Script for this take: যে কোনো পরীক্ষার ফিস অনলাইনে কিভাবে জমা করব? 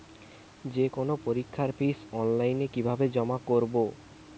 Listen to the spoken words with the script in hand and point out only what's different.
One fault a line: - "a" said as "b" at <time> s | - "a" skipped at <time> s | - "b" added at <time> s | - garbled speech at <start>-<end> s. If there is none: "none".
none